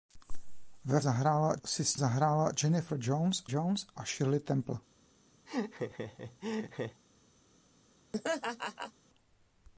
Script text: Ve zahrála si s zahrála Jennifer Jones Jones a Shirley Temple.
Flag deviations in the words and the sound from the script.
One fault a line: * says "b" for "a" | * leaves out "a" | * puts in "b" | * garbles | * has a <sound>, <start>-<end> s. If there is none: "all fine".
* has a laugh, 5.5-7.0 s
* has a laugh, 8.1-8.9 s